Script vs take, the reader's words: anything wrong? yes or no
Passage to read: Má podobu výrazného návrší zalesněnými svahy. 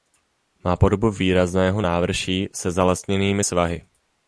yes